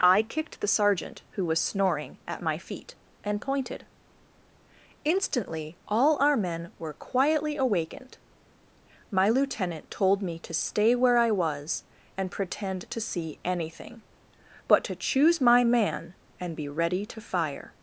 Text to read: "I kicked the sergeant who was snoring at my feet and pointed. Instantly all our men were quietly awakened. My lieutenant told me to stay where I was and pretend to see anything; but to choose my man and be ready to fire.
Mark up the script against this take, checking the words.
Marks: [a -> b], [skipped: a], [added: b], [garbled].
"I kicked the sergeant who was snoring at my feet and pointed. Instantly all our men were quietly awakened. My lieutenant told me to stay where I was and pretend to see anything; but to choose my man and be ready to fire.